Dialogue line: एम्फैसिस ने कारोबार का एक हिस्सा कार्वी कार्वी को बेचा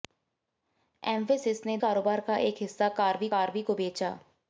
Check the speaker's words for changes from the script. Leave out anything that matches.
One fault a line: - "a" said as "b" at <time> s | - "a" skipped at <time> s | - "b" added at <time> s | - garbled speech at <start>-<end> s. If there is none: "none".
none